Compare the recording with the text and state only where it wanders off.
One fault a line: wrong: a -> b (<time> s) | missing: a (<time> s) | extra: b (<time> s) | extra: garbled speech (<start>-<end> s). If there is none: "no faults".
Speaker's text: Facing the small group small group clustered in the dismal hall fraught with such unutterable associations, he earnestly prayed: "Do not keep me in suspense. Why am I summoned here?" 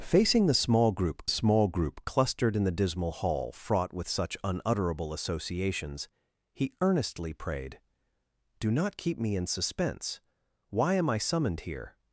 no faults